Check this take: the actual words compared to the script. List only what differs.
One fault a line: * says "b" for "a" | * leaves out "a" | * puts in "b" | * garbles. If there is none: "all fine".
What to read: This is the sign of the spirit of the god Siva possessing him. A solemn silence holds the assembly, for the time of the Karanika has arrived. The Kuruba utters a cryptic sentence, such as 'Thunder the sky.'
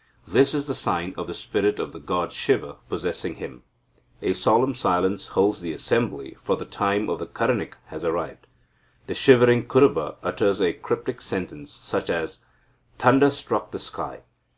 * puts in "shivering"
* puts in "struck"